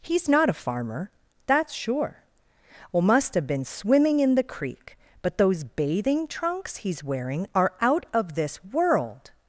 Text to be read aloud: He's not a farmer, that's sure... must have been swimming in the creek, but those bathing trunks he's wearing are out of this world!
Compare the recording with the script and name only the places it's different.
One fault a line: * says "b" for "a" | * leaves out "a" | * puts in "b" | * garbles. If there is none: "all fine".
* puts in "well"